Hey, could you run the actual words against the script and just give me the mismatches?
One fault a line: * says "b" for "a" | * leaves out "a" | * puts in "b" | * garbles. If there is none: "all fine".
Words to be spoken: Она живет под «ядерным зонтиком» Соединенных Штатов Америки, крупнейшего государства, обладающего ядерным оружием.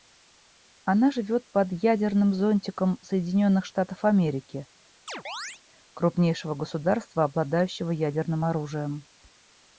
all fine